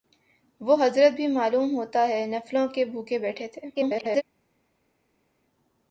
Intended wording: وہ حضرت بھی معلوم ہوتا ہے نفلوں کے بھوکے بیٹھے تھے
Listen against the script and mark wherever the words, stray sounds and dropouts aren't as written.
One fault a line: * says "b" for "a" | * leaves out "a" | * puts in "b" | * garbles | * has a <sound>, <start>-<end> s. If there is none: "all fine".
* garbles